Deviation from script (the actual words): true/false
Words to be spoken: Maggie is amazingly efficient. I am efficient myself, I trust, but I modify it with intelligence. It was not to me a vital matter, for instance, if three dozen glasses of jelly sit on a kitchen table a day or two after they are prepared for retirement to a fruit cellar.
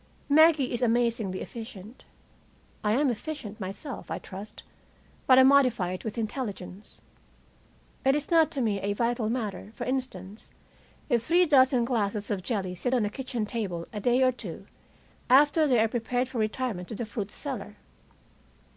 true